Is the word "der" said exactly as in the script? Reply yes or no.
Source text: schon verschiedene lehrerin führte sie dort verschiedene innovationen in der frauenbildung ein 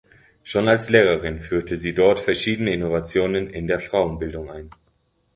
yes